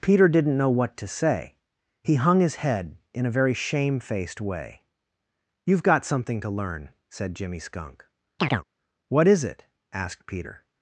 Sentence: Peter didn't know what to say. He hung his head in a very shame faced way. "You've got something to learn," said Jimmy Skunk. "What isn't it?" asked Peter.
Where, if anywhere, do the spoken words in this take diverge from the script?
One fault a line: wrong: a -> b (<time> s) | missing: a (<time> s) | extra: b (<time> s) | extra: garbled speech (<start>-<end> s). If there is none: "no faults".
wrong: isn't -> is (9.3 s)